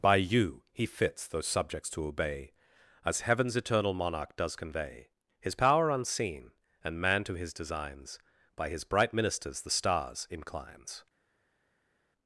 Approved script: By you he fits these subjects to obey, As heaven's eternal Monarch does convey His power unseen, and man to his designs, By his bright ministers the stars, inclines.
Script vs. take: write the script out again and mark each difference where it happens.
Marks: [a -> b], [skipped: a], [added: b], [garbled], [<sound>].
By you he fits [these -> those] subjects to obey, As heaven's eternal Monarch does convey His power unseen, and man to his designs, By his bright ministers the stars, inclines.